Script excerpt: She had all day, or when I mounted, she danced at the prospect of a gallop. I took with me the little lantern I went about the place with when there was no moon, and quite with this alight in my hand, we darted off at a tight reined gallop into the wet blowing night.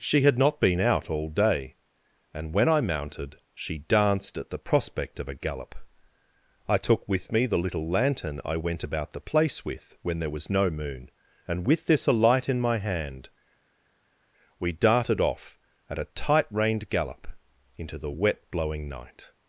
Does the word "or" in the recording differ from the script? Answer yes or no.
yes